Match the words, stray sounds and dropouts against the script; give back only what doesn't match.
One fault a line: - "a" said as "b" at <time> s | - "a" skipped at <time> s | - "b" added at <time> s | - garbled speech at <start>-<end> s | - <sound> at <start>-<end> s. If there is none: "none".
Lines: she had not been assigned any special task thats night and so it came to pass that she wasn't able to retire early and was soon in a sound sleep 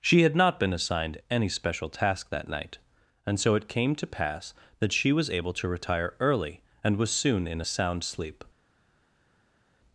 - "thats" said as "that" at 2.3 s
- "wasn't" said as "was" at 5.1 s